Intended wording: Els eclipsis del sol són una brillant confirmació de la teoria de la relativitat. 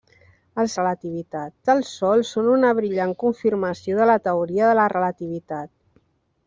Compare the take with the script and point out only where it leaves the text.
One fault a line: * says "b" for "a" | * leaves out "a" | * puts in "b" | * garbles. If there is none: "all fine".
* says "relativitat" for "eclipsis"